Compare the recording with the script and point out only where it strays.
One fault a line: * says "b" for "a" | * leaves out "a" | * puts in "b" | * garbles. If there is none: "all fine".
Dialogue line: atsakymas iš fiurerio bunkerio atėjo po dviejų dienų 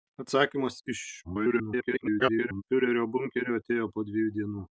* garbles